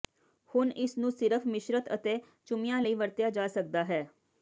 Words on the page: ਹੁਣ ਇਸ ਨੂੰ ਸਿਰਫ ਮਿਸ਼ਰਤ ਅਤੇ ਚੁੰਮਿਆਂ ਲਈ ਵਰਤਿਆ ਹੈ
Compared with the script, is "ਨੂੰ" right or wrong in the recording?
right